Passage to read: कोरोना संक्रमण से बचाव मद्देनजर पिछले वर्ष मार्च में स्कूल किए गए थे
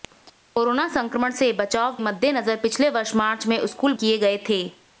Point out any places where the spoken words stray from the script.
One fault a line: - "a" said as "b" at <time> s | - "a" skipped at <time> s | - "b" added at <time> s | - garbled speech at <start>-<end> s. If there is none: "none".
none